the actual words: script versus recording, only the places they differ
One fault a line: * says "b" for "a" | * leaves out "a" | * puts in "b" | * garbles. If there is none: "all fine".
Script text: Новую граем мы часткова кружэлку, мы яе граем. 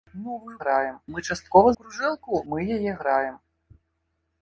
all fine